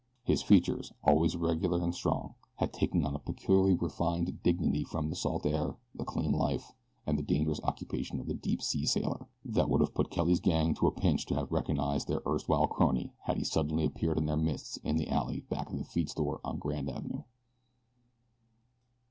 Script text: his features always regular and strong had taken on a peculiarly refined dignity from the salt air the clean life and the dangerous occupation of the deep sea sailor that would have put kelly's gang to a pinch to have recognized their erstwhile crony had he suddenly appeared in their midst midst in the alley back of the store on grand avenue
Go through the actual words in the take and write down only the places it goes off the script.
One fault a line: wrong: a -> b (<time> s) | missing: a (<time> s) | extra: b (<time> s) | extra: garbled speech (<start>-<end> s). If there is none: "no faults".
missing: midst (14.8 s)
extra: feed (15.9 s)